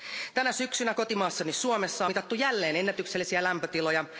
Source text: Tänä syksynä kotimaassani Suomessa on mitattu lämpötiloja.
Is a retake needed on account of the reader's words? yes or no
yes